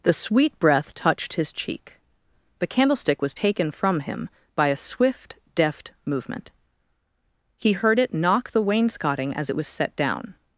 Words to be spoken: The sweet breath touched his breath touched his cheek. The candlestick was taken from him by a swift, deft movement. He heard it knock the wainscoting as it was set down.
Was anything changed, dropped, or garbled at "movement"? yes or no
no